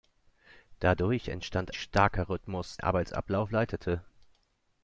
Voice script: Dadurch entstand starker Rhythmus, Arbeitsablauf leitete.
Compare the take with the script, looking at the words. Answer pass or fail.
pass